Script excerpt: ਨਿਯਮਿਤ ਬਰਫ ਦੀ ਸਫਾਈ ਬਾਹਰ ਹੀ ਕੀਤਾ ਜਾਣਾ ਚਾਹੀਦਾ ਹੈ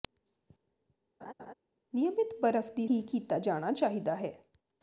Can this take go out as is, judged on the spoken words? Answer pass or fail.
fail